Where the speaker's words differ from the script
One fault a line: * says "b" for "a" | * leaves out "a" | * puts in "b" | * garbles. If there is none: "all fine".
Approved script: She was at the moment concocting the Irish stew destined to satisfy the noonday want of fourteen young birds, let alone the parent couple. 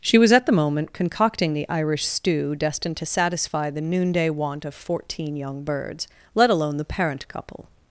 all fine